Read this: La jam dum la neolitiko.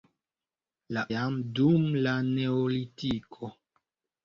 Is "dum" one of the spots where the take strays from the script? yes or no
no